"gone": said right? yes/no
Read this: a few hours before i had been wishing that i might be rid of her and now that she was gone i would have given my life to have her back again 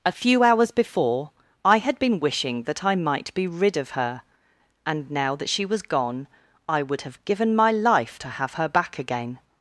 yes